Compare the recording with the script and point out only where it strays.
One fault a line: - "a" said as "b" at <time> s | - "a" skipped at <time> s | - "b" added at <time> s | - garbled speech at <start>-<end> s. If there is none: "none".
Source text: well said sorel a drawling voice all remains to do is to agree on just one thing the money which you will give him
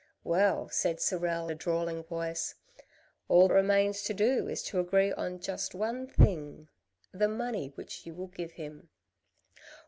none